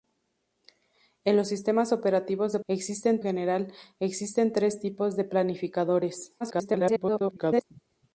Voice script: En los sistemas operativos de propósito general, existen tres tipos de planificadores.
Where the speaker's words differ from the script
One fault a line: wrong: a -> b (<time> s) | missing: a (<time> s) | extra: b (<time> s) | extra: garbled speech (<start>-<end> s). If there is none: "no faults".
wrong: propósito -> existen (2.7 s)
extra: garbled speech (6.4-7.6 s)